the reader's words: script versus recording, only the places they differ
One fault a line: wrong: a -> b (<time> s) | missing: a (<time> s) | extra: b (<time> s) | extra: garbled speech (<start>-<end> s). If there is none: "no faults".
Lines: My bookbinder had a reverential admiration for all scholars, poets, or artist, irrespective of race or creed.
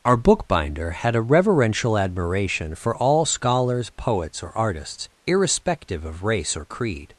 wrong: My -> Our (0.0 s)
wrong: artist -> artists (4.6 s)